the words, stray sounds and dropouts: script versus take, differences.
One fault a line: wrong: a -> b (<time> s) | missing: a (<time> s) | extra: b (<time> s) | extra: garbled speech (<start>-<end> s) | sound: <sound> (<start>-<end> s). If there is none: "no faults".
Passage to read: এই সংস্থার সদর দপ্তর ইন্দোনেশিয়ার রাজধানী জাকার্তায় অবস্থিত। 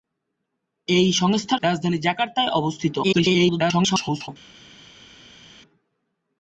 missing: সদর দপ্তর ইন্দোনেশিয়ার (1.6 s)
extra: garbled speech (3.0-4.3 s)